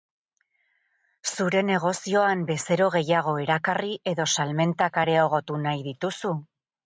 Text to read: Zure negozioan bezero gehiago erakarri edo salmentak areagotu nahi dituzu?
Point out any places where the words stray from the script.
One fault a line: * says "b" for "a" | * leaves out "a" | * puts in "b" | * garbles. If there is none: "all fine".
all fine